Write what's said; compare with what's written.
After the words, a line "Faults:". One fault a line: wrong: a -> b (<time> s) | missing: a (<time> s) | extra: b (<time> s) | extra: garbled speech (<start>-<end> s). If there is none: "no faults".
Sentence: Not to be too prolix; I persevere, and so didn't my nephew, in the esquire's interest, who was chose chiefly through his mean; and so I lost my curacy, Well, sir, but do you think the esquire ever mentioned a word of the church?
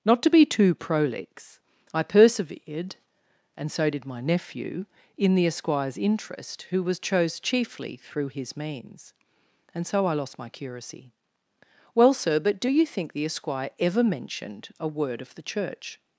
Not to be too prolix; I persevered, and so did my nephew, in the esquire's interest, who was chose chiefly through his means; and so I lost my curacy, Well, sir, but do you think the esquire ever mentioned a word of the church?
Faults:
wrong: persevere -> persevered (2.0 s)
wrong: didn't -> did (3.9 s)
wrong: mean -> means (8.6 s)